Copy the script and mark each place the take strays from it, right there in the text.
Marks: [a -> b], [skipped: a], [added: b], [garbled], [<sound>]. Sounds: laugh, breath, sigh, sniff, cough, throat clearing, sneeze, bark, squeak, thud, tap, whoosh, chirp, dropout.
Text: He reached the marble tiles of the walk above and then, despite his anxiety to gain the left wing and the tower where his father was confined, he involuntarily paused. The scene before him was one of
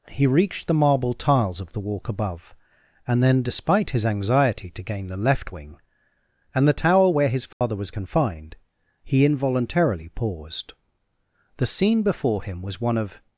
He reached the marble tiles of the walk above and then, despite his anxiety to gain the left wing and the tower where his father [dropout] was confined, he involuntarily paused. The scene before him was one of